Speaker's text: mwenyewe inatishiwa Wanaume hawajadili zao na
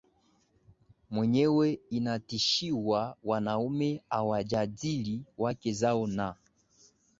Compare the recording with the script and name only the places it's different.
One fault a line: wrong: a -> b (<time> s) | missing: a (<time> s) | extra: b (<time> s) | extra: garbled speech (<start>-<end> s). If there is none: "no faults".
extra: wake (5.4 s)